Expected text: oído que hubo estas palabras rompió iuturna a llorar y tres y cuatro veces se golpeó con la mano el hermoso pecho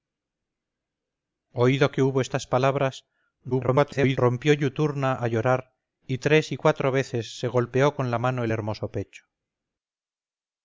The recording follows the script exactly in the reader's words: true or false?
false